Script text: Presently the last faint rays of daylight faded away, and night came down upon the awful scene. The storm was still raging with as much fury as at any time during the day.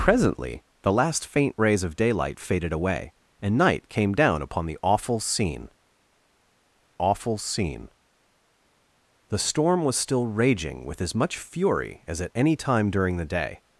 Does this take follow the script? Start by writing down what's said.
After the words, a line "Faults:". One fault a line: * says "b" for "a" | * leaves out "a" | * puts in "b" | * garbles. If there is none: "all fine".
Presently the last faint rays of daylight faded away, and night came down upon the awful scene awful scene. The storm was still raging with as much fury as at any time during the day.
Faults:
* puts in "awful scene"